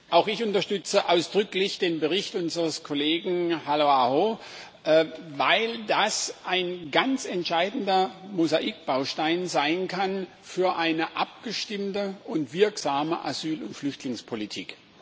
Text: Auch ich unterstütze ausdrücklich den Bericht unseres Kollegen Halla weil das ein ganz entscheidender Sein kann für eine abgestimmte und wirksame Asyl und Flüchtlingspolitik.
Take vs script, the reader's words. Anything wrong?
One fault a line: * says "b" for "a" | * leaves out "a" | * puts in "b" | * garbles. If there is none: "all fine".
* puts in "aho"
* puts in "Mosaikbaustein"